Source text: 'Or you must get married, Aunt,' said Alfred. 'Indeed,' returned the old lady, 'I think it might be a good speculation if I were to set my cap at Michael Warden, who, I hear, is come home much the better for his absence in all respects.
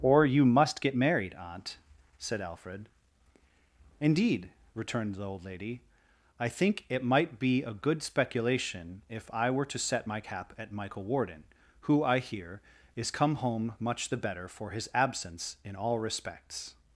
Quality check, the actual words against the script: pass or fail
pass